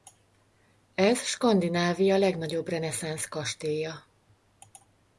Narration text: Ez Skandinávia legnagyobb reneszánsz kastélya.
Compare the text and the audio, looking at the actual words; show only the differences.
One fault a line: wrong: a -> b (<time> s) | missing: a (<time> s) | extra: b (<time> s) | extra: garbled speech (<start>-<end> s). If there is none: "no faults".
no faults